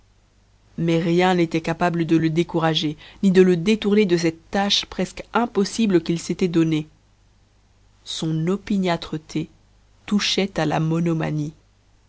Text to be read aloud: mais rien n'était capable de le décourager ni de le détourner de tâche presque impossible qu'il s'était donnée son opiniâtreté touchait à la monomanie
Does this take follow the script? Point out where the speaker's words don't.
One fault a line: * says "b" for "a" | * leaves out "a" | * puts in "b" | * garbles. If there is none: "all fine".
* puts in "cette"